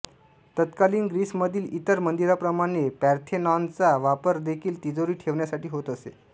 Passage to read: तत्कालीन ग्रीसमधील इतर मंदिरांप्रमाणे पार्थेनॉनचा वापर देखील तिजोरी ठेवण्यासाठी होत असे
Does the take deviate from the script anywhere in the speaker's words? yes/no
no